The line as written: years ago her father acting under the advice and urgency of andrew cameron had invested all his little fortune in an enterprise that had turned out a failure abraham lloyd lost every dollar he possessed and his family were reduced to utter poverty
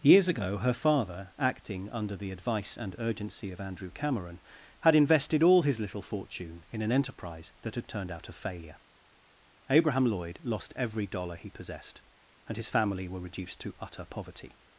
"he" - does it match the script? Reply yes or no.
yes